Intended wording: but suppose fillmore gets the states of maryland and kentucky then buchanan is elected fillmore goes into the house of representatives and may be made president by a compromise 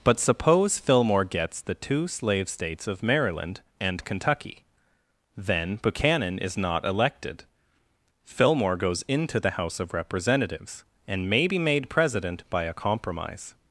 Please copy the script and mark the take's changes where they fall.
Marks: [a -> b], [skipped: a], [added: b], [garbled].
but suppose fillmore gets the [added: two slave] states of maryland and kentucky then buchanan is [added: not] elected fillmore goes into the house of representatives and may be made president by a compromise